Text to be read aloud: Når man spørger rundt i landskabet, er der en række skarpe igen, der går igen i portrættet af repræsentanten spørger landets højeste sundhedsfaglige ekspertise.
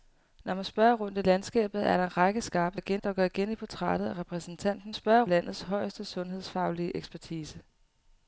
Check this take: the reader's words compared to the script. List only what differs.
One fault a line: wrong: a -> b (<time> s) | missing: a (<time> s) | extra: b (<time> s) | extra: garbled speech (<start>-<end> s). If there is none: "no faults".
no faults